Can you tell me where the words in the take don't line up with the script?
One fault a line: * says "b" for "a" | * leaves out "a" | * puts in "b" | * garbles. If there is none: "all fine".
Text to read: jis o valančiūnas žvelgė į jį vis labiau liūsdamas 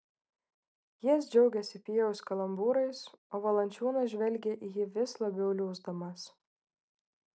* puts in "džiaugėsi pijaus kalambūrais"